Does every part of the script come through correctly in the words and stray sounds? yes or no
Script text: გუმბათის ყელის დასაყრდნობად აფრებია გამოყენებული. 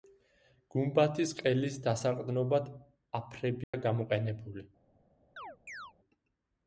no